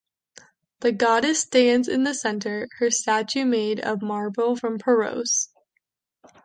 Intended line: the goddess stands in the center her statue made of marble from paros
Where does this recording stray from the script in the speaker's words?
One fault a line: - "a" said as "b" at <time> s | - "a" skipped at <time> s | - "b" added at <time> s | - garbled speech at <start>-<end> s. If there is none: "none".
none